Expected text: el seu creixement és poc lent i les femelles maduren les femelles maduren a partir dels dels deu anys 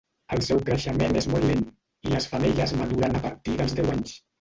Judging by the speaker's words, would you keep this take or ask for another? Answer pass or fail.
fail